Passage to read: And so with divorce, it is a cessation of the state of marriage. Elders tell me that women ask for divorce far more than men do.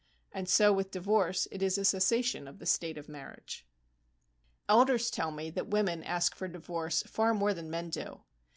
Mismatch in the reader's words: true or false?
false